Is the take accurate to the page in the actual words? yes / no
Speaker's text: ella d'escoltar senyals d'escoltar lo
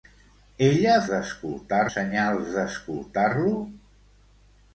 yes